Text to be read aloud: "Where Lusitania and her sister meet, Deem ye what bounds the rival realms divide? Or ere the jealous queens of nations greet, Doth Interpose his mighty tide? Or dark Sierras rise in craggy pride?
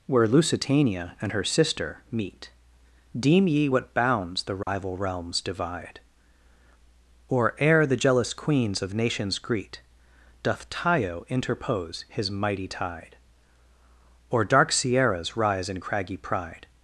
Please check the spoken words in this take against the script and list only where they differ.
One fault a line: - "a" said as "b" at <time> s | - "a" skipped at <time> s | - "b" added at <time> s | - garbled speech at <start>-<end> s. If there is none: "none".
- "Tayo" added at 10.7 s